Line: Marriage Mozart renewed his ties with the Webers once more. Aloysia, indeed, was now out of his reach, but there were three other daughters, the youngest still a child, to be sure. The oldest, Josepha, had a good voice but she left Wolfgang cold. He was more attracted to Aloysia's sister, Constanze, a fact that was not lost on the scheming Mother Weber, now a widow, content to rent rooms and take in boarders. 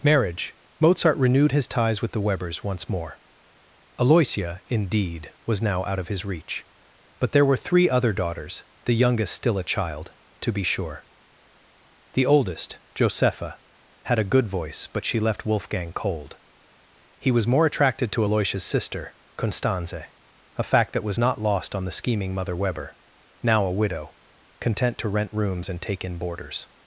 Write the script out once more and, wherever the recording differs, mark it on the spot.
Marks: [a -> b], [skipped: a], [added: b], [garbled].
Marriage Mozart renewed his ties with the Webers once more. Aloysia, indeed, was now out of his reach, but there were three other daughters, the youngest still a child, to be sure. The oldest, Josepha, had a good voice but she left Wolfgang cold. He was more attracted to Aloysia's sister, Constanze, a fact that was not lost on the scheming Mother Weber, now a widow, content to rent rooms and take in boarders.